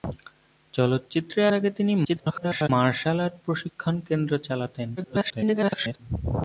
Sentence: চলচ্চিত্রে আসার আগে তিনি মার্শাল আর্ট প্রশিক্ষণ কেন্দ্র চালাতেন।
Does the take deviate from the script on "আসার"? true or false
true